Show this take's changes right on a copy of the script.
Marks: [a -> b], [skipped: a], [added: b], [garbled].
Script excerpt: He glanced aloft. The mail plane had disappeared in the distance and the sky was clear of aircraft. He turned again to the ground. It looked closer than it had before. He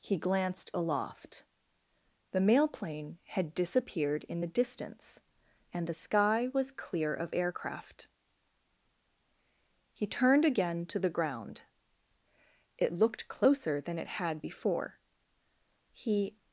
He glanced aloft. The mail plane had disappeared in the distance and the sky was clear of aircraft. He turned again to the ground. It looked closer than it had before. He